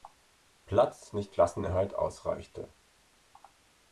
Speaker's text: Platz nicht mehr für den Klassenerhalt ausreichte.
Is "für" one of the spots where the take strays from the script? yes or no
yes